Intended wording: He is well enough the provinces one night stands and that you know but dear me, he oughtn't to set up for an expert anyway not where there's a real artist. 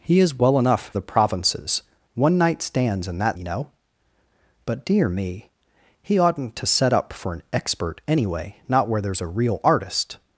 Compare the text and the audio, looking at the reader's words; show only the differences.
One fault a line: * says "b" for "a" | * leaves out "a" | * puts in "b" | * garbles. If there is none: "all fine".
all fine